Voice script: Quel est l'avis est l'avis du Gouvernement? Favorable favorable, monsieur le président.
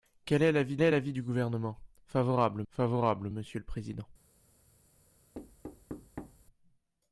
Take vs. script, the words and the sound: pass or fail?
fail